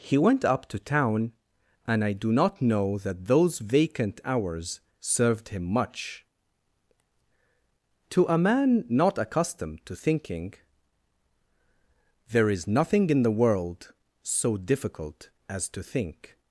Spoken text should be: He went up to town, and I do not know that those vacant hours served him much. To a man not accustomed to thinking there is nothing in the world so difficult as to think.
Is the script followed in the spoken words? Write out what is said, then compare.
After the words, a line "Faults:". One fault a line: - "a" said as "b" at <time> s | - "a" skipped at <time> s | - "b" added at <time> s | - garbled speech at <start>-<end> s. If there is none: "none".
He went up to town, and I do not know that those vacant hours served him much. To a man not accustomed to thinking there is nothing in the world so difficult as to think.
Faults:
none